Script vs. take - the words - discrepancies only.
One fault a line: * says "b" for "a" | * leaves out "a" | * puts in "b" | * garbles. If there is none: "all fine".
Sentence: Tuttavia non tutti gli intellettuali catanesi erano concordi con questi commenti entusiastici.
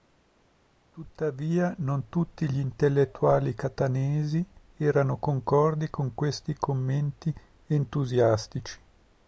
all fine